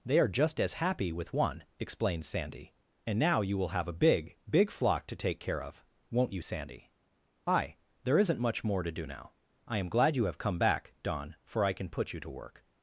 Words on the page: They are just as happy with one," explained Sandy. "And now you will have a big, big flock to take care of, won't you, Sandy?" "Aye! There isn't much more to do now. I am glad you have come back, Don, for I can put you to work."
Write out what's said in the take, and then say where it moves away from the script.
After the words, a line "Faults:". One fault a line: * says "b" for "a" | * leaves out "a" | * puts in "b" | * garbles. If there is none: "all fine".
They are just as happy with one," explained Sandy. "And now you will have a big, big flock to take care of, won't you, Sandy?" "Aye! There isn't much more to do now. I am glad you have come back, Don, for I can put you to work."
Faults:
all fine